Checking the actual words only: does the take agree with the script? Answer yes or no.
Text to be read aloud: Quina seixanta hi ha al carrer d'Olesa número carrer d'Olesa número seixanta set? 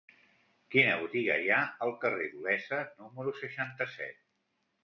no